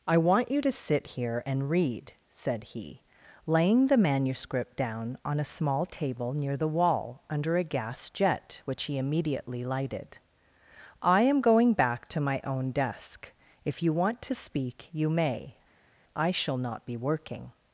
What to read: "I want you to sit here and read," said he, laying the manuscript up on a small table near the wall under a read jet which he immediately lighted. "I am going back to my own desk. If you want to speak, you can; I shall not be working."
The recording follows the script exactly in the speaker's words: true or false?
false